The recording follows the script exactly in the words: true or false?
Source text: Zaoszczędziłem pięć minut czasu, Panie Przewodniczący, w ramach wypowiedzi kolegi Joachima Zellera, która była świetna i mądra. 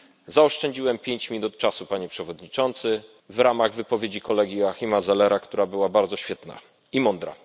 false